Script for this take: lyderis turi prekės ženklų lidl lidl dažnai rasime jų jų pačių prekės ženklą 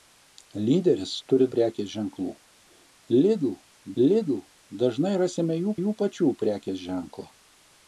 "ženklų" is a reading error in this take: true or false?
false